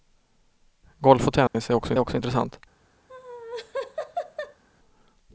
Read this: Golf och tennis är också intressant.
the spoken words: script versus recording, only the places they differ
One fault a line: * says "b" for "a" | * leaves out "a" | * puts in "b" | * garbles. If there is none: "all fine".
* puts in "också"